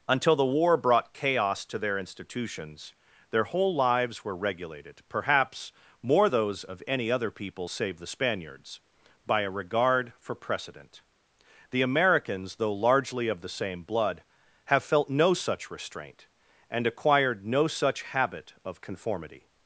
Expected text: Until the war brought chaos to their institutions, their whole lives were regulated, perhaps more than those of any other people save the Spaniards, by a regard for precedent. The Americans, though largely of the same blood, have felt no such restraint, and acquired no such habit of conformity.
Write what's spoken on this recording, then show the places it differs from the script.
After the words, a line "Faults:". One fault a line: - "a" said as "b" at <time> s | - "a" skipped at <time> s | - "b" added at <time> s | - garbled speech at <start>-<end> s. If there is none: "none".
Until the war brought chaos to their institutions, their whole lives were regulated, perhaps more those of any other people save the Spaniards, by a regard for precedent. The Americans, though largely of the same blood, have felt no such restraint, and acquired no such habit of conformity.
Faults:
- "than" skipped at 6.3 s